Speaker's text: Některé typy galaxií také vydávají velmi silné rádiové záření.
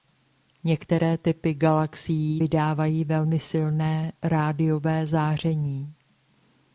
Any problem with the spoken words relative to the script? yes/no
yes